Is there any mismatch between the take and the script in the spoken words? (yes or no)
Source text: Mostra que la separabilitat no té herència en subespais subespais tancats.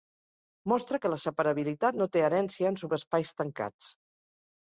yes